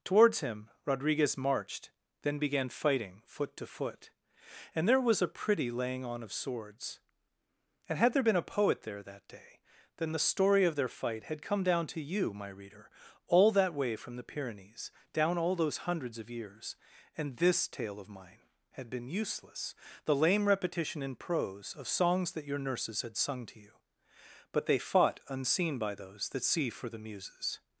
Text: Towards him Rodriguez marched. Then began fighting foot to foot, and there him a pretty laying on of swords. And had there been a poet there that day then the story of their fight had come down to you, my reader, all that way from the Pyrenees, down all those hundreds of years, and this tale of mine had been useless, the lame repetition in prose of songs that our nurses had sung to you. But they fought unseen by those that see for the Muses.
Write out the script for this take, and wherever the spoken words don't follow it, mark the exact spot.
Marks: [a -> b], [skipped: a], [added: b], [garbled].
Towards him Rodriguez marched. Then began fighting foot to foot, and there [him -> was] a pretty laying on of swords. And had there been a poet there that day then the story of their fight had come down to you, my reader, all that way from the Pyrenees, down all those hundreds of years, and this tale of mine had been useless, the lame repetition in prose of songs that [our -> your] nurses had sung to you. But they fought unseen by those that see for the Muses.